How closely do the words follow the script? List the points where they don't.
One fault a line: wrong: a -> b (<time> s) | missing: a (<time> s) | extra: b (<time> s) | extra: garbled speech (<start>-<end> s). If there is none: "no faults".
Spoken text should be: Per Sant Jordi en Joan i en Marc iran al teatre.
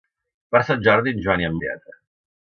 missing: Marc iran al (1.6 s)